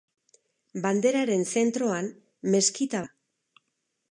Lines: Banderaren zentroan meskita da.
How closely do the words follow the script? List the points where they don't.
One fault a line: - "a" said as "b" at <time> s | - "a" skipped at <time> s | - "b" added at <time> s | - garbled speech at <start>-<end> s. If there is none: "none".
none